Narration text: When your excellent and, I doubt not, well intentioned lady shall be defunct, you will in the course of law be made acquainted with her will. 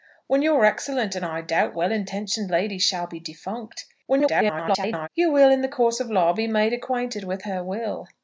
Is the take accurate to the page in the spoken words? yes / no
no